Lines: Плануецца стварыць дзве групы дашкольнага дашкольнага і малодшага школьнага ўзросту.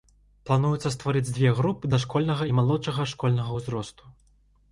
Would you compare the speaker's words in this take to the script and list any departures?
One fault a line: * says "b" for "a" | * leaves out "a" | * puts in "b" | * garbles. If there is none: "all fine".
* leaves out "дашкольнага"